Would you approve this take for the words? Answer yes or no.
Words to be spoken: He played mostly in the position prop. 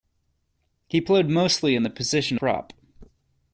yes